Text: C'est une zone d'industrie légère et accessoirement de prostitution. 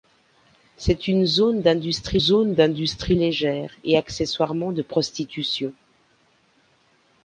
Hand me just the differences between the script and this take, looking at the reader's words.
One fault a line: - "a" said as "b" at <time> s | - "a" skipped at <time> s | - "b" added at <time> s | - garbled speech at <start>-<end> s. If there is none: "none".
- "zone d'industrie" added at 2.2 s